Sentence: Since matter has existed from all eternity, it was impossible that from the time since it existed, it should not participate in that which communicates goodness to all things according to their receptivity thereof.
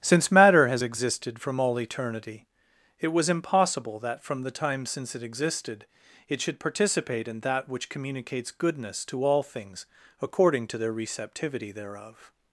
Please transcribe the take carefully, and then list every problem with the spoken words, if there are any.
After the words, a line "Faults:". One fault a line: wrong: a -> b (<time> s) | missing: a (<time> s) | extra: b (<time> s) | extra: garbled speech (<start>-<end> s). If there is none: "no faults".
Since matter has existed from all eternity, it was impossible that from the time since it existed, it should participate in that which communicates goodness to all things according to their receptivity thereof.
Faults:
missing: not (6.6 s)